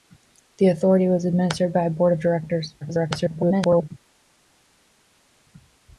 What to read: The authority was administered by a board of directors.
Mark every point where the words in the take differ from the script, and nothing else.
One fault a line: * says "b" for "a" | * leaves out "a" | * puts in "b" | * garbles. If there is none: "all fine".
* garbles